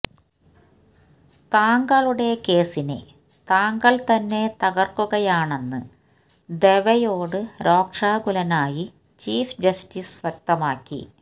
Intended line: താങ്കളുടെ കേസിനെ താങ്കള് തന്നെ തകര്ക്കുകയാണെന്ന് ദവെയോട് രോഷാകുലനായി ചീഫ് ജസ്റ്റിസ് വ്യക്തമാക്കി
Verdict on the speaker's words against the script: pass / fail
pass